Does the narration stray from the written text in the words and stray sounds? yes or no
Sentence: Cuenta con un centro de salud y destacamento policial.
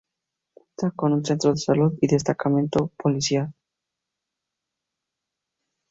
no